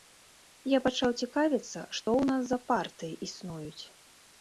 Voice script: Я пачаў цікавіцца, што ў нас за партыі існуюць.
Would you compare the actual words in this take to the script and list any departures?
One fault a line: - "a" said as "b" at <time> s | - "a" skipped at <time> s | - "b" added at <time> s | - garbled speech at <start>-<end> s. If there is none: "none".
none